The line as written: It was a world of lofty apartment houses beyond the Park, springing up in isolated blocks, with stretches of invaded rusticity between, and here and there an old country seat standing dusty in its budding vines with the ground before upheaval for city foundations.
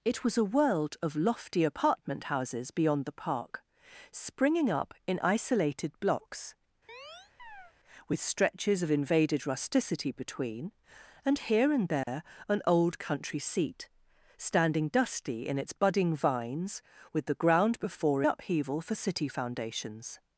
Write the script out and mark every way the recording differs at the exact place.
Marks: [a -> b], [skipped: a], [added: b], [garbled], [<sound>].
It was a world of lofty apartment houses beyond the Park, springing up in isolated blocks, [chirp] with stretches of invaded rusticity between, and here and there [dropout] an old country seat standing dusty in its budding vines with the ground before upheaval for city foundations.